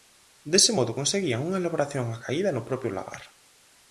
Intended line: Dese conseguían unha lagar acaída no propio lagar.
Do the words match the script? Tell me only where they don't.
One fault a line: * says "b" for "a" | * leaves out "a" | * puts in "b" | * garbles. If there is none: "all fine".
* puts in "modo"
* says "elaboración" for "lagar"